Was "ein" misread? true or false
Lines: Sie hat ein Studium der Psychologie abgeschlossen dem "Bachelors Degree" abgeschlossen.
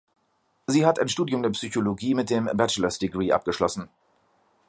false